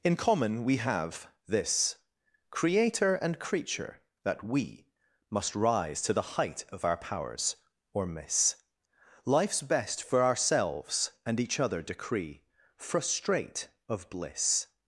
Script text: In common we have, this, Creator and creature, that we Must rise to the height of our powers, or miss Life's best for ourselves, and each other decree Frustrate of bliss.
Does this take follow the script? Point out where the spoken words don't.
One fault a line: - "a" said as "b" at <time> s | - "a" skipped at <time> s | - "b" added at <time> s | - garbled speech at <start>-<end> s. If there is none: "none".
none